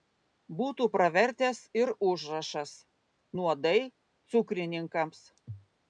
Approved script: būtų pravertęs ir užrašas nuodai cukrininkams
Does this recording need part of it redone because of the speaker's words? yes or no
no